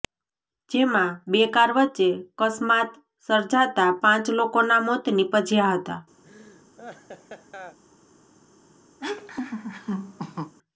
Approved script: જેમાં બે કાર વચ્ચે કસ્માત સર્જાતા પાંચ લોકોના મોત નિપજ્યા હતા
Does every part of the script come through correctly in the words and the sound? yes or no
no